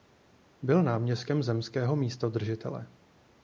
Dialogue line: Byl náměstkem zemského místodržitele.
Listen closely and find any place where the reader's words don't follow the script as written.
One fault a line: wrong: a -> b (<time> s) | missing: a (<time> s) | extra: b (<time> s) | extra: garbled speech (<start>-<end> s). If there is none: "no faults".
no faults